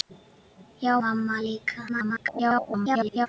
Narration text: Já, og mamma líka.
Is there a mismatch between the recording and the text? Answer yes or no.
yes